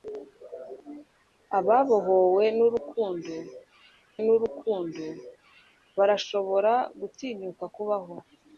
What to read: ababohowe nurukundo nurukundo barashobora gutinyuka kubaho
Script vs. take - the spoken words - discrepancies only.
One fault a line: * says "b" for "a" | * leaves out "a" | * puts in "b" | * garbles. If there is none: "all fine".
all fine